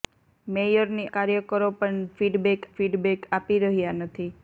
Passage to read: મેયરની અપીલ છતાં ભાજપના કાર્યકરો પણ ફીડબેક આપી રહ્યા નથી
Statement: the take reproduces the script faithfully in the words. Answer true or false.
false